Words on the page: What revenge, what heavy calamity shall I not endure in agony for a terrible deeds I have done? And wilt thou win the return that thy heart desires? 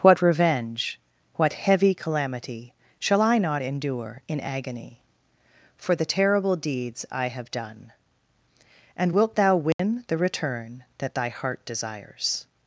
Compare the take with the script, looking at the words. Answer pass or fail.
fail